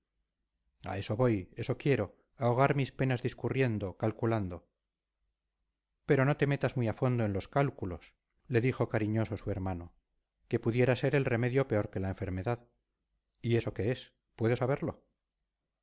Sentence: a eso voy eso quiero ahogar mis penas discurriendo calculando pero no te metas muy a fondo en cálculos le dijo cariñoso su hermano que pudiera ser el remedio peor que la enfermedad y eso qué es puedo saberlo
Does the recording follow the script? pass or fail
fail